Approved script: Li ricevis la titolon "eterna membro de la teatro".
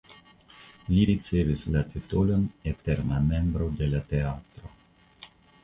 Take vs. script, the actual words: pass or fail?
pass